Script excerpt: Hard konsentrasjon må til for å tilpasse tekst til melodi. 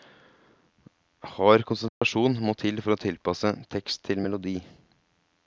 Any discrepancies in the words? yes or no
no